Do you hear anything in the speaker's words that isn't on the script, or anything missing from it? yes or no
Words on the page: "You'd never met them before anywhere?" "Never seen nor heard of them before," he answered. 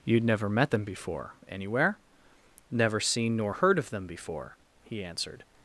no